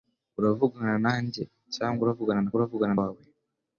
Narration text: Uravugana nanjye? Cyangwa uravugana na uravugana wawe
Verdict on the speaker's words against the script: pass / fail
pass